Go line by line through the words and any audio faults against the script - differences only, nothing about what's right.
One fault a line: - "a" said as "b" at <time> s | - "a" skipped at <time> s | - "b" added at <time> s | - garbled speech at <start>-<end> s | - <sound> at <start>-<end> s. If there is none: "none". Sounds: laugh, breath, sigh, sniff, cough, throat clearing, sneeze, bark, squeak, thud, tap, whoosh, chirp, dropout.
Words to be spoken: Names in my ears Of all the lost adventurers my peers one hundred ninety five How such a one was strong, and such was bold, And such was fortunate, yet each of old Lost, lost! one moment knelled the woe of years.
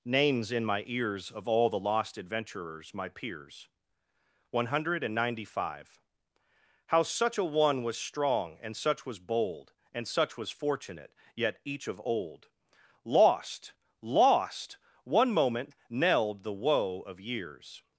none